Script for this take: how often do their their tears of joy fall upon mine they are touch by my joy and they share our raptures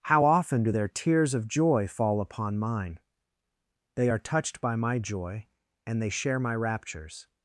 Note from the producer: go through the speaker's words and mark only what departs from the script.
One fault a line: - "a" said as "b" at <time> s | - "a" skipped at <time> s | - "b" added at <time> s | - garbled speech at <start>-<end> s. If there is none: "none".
- "their" skipped at 0.9 s
- "touch" said as "touched" at 4.2 s
- "our" said as "my" at 6.4 s